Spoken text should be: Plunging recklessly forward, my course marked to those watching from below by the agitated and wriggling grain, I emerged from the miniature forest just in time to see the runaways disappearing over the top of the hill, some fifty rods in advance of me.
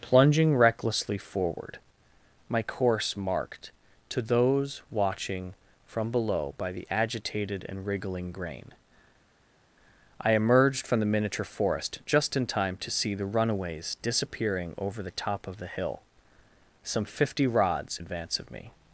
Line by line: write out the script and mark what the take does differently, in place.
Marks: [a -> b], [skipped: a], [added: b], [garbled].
Plunging recklessly forward, my course marked to those watching from below by the agitated and wriggling grain, I emerged from the miniature forest just in time to see the runaways disappearing over the top of the hill, some fifty rods [skipped: in] advance of me.